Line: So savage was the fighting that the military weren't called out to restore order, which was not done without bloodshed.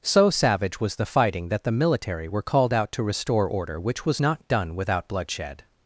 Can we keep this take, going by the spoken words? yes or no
no